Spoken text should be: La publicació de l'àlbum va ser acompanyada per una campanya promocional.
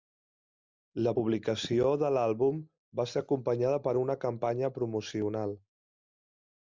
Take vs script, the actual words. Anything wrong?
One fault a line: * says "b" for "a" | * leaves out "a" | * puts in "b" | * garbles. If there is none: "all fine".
all fine